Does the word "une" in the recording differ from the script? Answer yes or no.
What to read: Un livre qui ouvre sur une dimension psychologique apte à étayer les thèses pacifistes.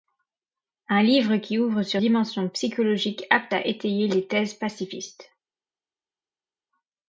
yes